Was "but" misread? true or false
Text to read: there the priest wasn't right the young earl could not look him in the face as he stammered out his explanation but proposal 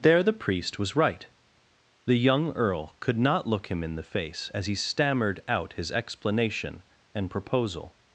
true